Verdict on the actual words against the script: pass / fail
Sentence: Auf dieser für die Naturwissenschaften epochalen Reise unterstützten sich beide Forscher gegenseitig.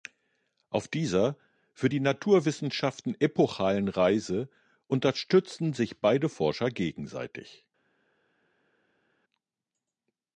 pass